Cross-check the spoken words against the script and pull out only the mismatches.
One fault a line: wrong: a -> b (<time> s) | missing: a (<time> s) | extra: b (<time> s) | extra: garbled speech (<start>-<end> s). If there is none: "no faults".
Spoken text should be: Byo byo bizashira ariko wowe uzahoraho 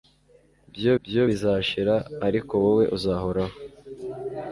no faults